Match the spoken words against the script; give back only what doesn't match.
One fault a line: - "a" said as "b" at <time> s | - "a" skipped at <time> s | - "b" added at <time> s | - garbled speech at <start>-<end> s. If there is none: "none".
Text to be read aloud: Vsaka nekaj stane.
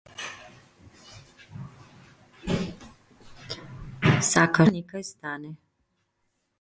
none